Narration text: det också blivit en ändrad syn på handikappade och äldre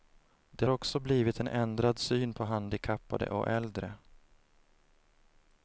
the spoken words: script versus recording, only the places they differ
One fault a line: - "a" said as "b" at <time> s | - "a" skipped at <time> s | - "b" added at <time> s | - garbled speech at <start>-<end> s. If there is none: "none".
none